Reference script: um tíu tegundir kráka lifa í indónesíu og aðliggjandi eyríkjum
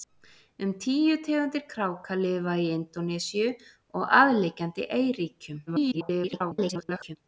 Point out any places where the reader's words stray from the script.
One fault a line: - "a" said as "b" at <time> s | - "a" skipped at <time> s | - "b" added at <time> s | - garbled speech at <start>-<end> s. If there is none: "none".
- garbled speech at 5.7-7.2 s